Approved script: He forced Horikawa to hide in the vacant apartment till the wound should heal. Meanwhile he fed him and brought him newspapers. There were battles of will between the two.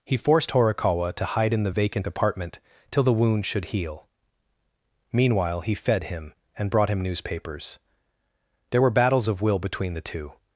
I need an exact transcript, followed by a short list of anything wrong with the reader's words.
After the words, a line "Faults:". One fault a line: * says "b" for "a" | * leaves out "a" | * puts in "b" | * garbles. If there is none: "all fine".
He forced Horikawa to hide in the vacant apartment till the wound should heal. Meanwhile he fed him and brought him newspapers. There were battles of will between the two.
Faults:
all fine